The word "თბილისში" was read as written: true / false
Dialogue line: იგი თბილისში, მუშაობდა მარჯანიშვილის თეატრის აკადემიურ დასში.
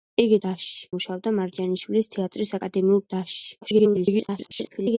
false